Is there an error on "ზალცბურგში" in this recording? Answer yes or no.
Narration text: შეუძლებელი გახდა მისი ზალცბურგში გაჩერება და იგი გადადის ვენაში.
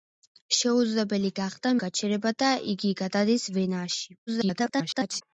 yes